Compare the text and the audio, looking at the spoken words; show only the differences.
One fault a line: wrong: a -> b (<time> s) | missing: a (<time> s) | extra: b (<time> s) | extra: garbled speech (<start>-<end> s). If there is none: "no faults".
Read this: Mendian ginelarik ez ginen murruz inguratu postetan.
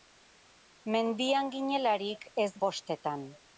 missing: ginen murruz inguratu (2.5 s)